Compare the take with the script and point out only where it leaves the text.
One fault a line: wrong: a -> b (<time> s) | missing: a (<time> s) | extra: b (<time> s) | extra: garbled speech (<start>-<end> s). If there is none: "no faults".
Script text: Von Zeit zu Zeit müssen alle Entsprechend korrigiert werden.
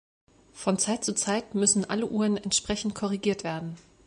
extra: Uhren (2.1 s)